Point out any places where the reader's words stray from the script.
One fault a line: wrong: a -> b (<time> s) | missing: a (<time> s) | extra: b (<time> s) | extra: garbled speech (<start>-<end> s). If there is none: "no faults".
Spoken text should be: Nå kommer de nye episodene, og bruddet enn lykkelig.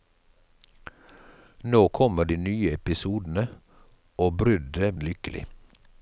no faults